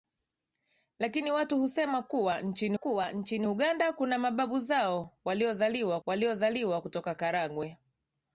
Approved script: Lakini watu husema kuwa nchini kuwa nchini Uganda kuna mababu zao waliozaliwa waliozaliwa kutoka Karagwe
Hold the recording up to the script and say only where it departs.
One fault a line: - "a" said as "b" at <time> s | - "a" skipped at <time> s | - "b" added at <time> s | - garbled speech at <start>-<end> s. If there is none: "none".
none